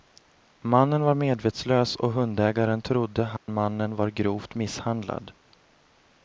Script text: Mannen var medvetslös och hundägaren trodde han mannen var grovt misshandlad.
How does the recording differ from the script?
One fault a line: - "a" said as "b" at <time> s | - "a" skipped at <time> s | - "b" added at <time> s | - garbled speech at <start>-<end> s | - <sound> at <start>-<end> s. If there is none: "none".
- dropout at 3.4-3.5 s